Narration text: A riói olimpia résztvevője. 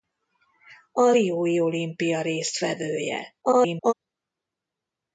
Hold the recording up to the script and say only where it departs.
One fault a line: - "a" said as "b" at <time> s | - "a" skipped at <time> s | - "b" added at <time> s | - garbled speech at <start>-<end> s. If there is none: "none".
- garbled speech at 3.4-3.9 s